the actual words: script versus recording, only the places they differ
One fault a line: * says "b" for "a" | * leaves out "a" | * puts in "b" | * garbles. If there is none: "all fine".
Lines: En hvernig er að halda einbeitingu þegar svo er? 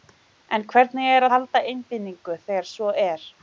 * leaves out "að"